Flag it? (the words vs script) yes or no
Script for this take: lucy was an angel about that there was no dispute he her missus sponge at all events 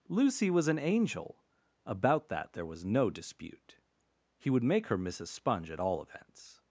yes